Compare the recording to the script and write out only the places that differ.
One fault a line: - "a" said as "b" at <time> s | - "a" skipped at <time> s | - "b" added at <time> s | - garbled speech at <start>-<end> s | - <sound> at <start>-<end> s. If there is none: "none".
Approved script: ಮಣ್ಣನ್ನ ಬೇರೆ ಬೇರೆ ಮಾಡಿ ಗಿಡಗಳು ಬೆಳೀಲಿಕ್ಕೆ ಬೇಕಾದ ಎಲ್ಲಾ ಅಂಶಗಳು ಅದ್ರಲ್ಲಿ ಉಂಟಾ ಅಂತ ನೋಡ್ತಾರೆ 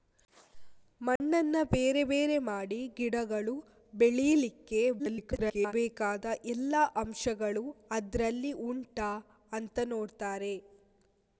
- dropout at 1.2-1.2 s
- garbled speech at 5.0-5.7 s